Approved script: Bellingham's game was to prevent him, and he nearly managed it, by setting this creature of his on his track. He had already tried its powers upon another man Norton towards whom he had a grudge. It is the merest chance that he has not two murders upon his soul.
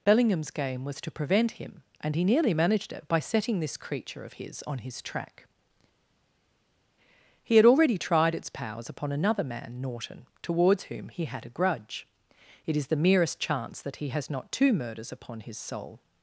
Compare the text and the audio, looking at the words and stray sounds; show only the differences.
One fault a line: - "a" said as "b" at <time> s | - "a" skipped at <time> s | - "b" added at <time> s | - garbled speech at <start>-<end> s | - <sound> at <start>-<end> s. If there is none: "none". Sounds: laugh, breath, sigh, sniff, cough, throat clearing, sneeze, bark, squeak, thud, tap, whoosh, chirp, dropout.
none